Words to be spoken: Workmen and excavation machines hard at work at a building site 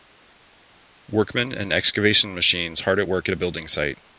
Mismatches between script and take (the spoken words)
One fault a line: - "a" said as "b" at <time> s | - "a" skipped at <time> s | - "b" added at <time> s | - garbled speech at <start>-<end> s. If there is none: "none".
none